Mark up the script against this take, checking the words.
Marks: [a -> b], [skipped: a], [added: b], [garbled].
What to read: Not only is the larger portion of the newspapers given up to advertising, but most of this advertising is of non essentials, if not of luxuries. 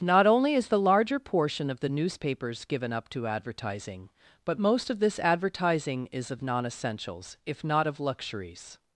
Not only is the larger portion of the newspapers given up to advertising, but most of this advertising is of non essentials, if not of luxuries.